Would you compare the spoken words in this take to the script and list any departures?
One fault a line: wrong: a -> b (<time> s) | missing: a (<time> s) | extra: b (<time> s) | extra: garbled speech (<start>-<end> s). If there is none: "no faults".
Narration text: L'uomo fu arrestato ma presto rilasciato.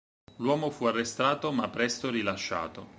no faults